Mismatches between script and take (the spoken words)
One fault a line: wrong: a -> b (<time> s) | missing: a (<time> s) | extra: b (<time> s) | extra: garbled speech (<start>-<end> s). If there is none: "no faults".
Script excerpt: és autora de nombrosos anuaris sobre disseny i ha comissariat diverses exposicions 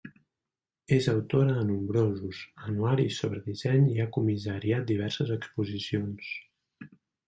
no faults